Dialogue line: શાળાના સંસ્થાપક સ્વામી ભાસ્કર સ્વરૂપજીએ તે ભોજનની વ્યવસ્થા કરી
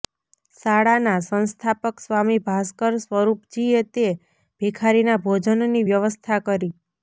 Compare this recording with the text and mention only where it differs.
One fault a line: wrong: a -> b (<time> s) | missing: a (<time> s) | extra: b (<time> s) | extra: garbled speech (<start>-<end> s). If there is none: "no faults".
extra: ભિખારીના (4.6 s)